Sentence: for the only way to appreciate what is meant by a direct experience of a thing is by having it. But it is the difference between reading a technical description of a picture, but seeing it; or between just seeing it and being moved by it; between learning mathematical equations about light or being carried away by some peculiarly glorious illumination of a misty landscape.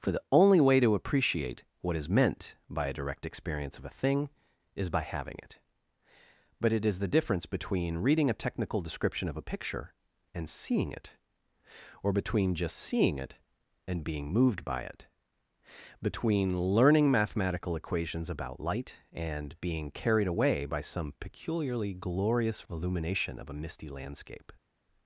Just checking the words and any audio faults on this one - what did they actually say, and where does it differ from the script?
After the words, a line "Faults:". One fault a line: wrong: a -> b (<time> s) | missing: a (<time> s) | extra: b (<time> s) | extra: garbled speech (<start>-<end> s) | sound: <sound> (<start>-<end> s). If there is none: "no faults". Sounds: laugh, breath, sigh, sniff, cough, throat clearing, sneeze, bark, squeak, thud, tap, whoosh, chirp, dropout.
for the only way to appreciate what is meant by a direct experience of a thing is by having it. But it is the difference between reading a technical description of a picture, and seeing it; or between just seeing it and being moved by it; between learning mathematical equations about light and being carried away by some peculiarly glorious illumination of a misty landscape.
Faults:
wrong: but -> and (10.3 s)
wrong: or -> and (19.1 s)